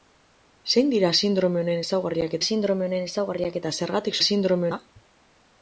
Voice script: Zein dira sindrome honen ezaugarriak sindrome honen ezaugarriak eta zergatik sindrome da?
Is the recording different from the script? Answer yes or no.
no